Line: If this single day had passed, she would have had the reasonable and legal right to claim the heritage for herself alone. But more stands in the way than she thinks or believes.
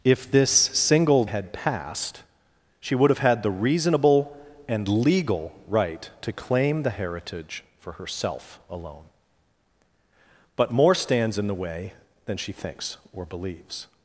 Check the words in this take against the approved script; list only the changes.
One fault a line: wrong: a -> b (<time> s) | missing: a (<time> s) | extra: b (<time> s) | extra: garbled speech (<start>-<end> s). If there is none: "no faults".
missing: day (1.2 s)